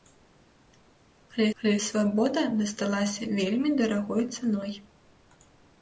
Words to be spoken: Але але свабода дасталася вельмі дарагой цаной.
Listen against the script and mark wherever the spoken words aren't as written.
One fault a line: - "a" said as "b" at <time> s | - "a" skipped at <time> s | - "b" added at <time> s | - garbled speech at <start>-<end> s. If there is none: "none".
none